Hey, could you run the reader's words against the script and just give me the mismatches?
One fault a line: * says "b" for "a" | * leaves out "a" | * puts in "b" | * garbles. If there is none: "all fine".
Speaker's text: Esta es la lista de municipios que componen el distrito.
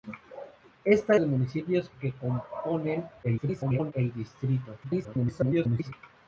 * leaves out "es la lista"
* garbles
* garbles